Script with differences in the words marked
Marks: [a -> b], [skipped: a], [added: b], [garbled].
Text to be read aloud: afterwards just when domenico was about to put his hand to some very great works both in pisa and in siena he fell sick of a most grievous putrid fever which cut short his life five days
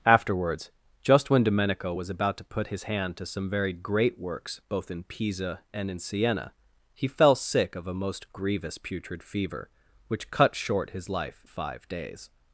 afterwards just when domenico was about to put his hand to some very great works both in pisa and in siena he fell sick of a most grievous putrid fever which cut short his life five days